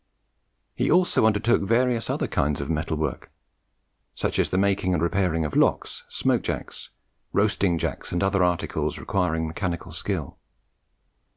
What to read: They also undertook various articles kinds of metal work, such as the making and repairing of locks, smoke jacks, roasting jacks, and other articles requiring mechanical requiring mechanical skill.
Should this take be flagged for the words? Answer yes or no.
yes